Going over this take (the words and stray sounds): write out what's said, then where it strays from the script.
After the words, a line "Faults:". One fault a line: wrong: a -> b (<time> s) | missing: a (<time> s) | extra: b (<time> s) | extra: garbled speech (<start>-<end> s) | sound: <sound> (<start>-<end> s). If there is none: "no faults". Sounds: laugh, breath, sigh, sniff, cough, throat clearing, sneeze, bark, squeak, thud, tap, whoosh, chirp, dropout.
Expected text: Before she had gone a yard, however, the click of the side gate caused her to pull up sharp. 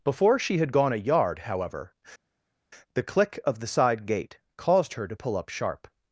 Before she had gone a yard, however, the click of the side gate caused her to pull up sharp.
Faults:
no faults